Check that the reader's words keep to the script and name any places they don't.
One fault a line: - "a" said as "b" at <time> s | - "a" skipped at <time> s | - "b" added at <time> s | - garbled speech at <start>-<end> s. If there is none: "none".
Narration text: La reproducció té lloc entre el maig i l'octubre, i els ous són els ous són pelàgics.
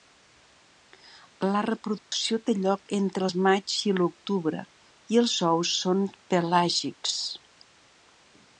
- "els ous són" skipped at 6.1 s